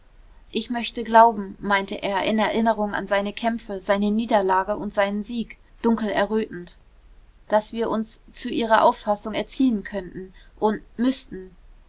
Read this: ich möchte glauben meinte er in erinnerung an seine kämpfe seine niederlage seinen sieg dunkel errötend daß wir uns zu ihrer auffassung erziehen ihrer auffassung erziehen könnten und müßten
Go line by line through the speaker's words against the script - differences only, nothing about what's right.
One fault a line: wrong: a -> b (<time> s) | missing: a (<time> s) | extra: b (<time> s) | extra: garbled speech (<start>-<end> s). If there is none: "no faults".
extra: und (4.8 s)
missing: ihrer auffassung erziehen (9.8 s)